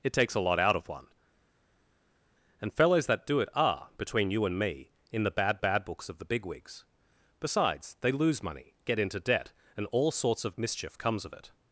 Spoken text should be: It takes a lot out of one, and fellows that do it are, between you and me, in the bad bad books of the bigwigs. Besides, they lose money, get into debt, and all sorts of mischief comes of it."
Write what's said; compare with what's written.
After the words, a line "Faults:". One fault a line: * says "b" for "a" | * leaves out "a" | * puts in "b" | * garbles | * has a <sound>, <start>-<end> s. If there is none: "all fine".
It takes a lot out of one, and fellows that do it are, between you and me, in the bad bad books of the bigwigs. Besides, they lose money, get into debt, and all sorts of mischief comes of it."
Faults:
all fine